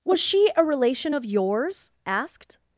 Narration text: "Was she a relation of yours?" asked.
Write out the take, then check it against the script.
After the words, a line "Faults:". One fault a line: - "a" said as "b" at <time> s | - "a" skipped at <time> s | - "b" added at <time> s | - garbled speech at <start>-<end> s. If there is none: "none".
"Was she a relation of yours?" asked.
Faults:
none